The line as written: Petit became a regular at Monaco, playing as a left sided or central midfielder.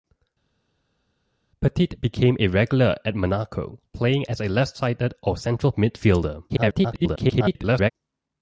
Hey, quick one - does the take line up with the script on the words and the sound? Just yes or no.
no